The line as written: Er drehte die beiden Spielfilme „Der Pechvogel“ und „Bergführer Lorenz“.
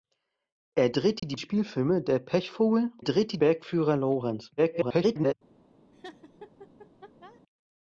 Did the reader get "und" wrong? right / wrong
wrong